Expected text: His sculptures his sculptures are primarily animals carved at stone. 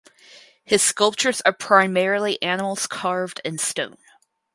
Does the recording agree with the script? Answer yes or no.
no